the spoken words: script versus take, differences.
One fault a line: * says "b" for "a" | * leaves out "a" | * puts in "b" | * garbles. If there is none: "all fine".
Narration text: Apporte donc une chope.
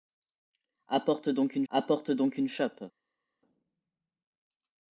* puts in "apporte donc une"